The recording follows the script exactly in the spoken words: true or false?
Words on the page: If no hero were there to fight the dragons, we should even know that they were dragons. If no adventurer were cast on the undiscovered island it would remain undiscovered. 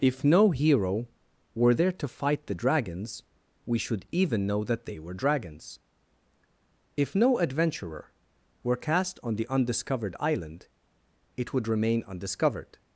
true